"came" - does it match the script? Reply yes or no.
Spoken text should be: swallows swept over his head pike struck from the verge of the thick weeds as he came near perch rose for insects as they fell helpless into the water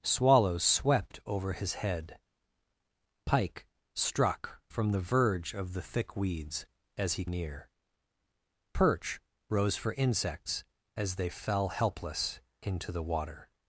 no